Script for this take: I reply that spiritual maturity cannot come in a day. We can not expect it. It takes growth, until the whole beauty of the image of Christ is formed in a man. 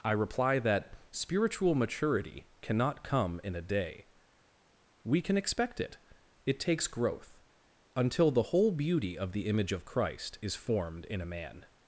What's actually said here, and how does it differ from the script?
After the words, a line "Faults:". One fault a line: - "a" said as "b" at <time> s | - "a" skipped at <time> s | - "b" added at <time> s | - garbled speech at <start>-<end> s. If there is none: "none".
I reply that spiritual maturity cannot come in a day. We can expect it. It takes growth, until the whole beauty of the image of Christ is formed in a man.
Faults:
- "not" skipped at 5.4 s